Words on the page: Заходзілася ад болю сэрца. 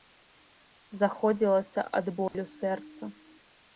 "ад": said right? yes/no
yes